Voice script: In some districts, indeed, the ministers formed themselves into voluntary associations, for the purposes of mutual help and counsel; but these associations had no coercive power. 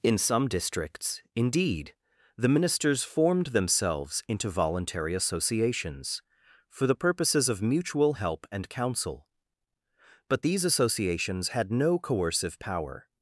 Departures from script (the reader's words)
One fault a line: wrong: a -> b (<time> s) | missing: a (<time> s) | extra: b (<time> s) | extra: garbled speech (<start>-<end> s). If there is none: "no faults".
no faults